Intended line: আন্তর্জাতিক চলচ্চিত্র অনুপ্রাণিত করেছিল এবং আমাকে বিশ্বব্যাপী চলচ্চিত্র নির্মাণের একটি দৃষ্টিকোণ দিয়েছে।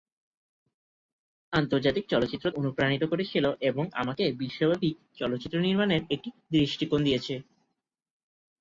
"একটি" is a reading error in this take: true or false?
false